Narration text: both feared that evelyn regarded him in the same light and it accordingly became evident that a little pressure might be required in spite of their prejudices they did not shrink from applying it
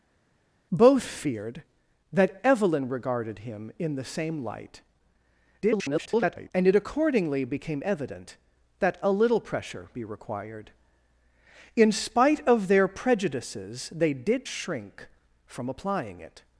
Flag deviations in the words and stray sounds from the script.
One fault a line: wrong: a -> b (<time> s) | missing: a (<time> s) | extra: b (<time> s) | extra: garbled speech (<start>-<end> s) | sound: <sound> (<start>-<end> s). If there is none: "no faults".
extra: garbled speech (5.6-6.5 s)
missing: might (9.9 s)
missing: not (14.5 s)